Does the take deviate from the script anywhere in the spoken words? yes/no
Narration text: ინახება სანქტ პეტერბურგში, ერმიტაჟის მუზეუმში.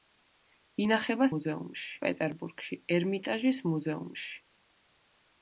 yes